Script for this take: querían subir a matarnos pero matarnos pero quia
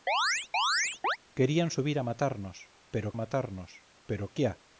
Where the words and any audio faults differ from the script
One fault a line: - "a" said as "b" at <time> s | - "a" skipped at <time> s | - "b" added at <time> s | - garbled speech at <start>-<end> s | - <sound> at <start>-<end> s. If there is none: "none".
- chirp at 0.1-1.2 s